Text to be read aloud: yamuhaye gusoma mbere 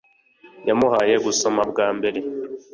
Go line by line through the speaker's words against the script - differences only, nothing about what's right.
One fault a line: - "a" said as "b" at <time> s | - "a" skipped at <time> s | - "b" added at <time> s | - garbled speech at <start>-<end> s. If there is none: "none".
- "bwa" added at 1.7 s